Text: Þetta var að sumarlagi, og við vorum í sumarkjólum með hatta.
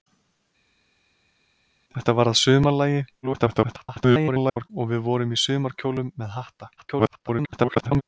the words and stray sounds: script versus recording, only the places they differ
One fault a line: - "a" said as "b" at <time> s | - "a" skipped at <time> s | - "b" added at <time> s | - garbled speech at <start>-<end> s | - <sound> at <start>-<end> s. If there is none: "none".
- garbled speech at 3.2-4.7 s
- garbled speech at 6.8-8.0 s